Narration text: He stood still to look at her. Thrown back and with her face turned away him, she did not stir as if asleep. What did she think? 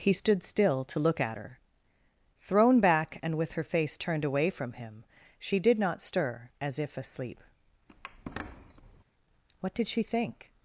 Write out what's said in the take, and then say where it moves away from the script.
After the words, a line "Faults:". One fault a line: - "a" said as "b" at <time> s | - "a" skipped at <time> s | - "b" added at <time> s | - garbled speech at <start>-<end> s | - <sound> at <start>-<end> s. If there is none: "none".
He stood still to look at her. Thrown back and with her face turned away from him, she did not stir as if asleep. What did she think?
Faults:
- "from" added at 4.5 s
- squeak at 7.9-9.0 s